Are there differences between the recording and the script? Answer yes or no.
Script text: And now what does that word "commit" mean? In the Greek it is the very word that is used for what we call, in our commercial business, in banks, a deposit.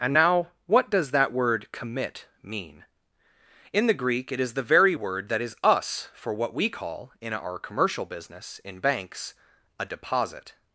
yes